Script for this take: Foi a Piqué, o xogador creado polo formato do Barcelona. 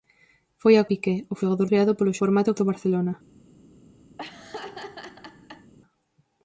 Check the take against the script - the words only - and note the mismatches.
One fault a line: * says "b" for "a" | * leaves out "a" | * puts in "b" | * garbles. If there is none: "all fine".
all fine